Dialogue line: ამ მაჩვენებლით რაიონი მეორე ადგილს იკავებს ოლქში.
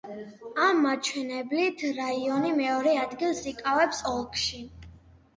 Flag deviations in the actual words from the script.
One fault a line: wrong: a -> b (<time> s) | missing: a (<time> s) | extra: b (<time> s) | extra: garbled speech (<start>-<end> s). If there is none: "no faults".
no faults